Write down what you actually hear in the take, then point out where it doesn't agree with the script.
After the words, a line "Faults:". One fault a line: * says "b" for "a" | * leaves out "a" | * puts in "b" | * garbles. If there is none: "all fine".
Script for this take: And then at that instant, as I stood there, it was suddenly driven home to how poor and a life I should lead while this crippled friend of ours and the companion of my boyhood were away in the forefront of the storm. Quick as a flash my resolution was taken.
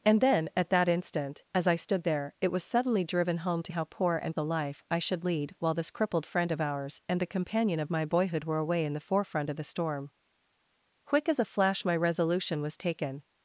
And then at that instant, as I stood there, it was suddenly driven home to how poor and a life I should lead while this crippled friend of ours and the companion of my boyhood were away in the forefront of the storm. Quick as a flash my resolution was taken.
Faults:
all fine